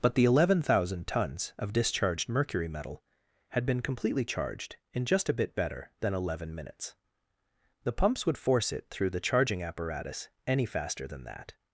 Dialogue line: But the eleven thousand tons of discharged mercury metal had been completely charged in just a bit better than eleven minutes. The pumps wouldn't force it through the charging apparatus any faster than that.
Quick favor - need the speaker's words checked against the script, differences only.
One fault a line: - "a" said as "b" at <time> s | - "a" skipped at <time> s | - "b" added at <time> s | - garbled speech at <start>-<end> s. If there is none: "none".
- "wouldn't" said as "would" at 8.2 s